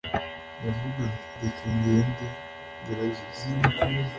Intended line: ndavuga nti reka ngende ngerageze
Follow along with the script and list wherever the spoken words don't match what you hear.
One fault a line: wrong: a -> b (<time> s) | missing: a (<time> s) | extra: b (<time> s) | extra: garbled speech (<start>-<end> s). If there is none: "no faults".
no faults